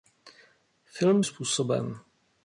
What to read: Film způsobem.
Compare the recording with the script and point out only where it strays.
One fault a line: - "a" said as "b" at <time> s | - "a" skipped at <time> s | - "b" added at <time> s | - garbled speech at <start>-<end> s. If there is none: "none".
none